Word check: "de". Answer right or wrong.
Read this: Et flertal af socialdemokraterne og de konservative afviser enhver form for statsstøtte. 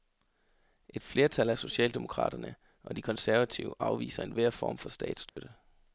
right